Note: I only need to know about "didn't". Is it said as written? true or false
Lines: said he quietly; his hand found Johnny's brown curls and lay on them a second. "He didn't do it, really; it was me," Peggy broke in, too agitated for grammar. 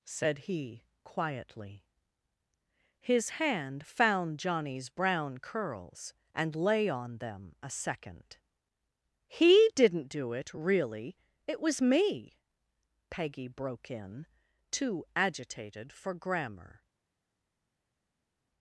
true